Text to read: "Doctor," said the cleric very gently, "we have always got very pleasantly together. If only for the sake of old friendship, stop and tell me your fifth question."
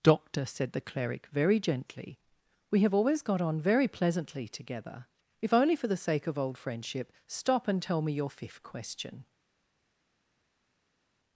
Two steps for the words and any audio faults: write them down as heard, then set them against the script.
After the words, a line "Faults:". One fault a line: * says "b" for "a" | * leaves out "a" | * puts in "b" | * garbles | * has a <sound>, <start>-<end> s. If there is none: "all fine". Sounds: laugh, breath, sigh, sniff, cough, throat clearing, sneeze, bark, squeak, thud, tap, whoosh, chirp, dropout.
"Doctor," said the cleric very gently, "we have always got on very pleasantly together. If only for the sake of old friendship, stop and tell me your fifth question."
Faults:
* puts in "on"